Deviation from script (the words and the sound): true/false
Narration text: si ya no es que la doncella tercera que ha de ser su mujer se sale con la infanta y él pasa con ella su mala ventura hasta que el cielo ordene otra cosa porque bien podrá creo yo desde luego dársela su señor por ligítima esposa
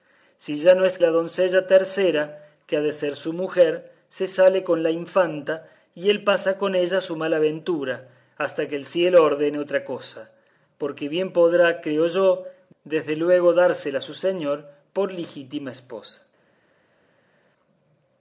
true